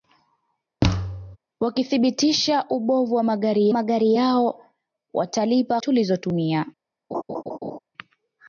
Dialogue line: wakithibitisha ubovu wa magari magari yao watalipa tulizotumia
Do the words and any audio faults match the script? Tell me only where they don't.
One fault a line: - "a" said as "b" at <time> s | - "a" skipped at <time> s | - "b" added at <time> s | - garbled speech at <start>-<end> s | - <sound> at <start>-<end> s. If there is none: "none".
- thud at 0.8-1.4 s
- laugh at 7.1-7.8 s